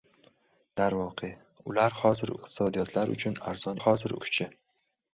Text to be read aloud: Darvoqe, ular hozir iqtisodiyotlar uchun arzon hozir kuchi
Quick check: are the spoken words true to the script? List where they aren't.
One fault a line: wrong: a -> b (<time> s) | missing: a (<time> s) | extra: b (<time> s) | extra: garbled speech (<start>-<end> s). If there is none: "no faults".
no faults